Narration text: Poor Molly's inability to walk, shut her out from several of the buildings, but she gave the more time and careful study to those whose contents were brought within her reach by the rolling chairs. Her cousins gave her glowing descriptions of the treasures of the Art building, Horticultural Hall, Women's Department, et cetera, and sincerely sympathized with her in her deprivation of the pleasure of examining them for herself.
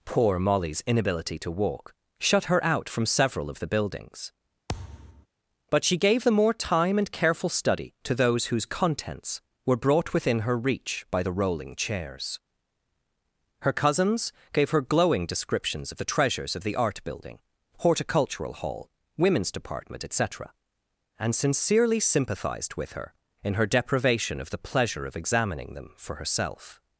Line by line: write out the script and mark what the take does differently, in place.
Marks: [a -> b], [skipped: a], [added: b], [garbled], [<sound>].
Poor Molly's inability to walk, shut her out from several of the buildings, [thud] but she gave the more time and careful study to those whose contents were brought within her reach by the rolling chairs. Her cousins gave her glowing descriptions of the treasures of the Art building, Horticultural Hall, Women's Department, et cetera, and sincerely sympathized with her in her deprivation of the pleasure of examining them for herself.